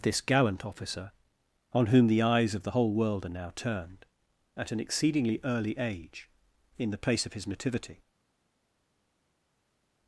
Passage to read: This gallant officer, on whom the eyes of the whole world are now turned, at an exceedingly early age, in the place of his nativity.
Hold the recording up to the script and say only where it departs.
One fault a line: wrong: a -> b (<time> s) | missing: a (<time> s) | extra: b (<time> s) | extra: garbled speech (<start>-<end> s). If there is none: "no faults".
no faults